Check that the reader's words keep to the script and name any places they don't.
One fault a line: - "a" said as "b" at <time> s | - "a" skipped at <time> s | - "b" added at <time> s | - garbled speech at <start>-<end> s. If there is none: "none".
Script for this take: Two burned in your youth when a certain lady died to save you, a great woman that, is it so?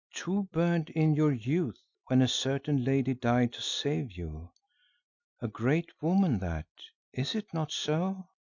- "not" added at 7.5 s